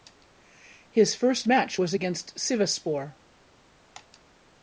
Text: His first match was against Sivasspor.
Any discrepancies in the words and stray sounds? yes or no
no